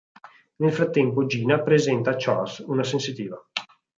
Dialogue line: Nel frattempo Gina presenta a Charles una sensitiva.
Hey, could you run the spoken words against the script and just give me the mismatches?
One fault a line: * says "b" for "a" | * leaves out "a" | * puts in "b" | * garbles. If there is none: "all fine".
all fine